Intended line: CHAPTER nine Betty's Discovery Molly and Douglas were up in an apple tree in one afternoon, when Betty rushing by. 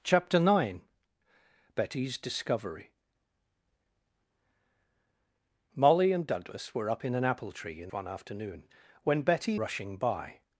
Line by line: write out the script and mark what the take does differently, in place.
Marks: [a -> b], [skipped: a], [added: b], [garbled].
CHAPTER nine Betty's Discovery Molly and Douglas were up in an apple tree in one afternoon, when Betty rushing by.